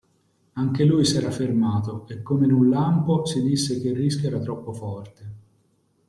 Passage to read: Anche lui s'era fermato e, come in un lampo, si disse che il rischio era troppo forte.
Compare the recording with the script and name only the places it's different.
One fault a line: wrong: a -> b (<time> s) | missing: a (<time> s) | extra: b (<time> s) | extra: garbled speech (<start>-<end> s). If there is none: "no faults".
no faults